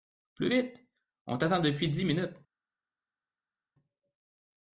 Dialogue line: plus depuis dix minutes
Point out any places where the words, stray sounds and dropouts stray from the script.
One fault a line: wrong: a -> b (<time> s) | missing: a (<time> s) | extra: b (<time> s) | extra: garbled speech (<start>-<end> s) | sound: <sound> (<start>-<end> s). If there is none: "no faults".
extra: vite on t'attend (0.5 s)